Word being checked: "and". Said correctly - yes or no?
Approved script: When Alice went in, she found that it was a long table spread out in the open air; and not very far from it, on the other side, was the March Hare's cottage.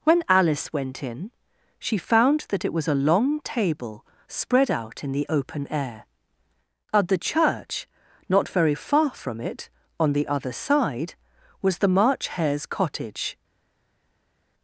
no